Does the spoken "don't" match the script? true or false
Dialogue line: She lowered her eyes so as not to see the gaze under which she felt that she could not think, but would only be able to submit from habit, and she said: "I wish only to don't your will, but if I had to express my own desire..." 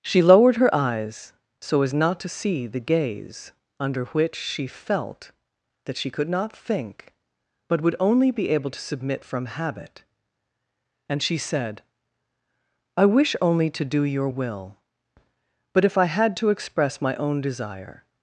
false